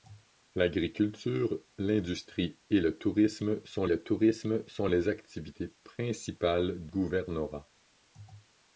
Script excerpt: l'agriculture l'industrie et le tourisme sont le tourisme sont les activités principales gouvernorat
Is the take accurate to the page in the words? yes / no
yes